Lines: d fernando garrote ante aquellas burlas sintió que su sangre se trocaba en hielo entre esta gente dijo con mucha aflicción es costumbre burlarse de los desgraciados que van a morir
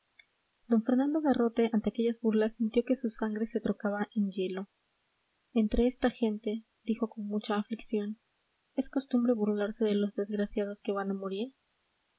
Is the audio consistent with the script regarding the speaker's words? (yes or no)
yes